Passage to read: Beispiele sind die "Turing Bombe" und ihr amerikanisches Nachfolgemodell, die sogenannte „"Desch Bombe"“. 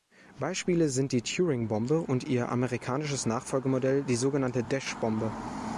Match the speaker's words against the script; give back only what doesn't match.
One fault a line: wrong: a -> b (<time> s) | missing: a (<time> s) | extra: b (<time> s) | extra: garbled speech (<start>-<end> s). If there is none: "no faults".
no faults